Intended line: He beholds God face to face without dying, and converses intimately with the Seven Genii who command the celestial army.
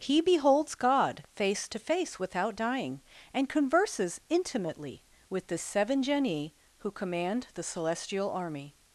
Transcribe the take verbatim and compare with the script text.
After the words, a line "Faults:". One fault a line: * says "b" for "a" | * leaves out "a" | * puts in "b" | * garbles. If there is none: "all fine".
He beholds God face to face without dying, and converses intimately with the Seven Genii who command the celestial army.
Faults:
all fine